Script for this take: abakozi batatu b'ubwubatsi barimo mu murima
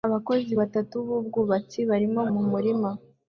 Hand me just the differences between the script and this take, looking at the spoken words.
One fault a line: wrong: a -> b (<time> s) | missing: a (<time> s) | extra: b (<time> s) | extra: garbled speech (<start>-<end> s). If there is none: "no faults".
no faults